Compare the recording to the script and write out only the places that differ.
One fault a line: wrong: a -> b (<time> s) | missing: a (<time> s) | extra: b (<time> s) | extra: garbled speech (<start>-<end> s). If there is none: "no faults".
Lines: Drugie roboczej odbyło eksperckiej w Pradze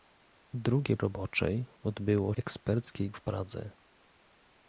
no faults